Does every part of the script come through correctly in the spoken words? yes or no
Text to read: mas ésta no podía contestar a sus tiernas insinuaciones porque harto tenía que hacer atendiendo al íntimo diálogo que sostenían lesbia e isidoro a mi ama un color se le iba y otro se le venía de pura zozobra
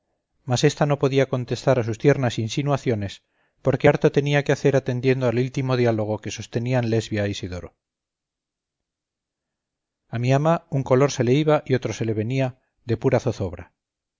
yes